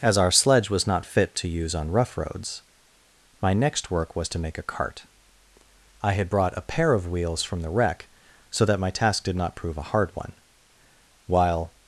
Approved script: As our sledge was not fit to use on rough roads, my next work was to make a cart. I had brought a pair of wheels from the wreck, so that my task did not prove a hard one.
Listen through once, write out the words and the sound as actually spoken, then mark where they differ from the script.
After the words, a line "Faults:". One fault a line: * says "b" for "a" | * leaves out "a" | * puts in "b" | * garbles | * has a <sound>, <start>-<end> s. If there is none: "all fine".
As our sledge was not fit to use on rough roads, my next work was to make a cart. I had brought a pair of wheels from the wreck, so that my task did not prove a hard one. While
Faults:
* puts in "While"